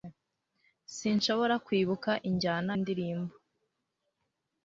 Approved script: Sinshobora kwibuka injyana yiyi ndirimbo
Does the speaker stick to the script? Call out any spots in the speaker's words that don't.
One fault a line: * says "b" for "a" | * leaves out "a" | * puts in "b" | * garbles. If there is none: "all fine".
* leaves out "yiyi"